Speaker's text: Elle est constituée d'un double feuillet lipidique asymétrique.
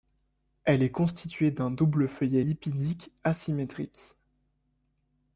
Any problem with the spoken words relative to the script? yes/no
no